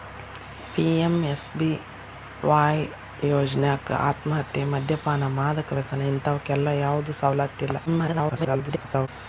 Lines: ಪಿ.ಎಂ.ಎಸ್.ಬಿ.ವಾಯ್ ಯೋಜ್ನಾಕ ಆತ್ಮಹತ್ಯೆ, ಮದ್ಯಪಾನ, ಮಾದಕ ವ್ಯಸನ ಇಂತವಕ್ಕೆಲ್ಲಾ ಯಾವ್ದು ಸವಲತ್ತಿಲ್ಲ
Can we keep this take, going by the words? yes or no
no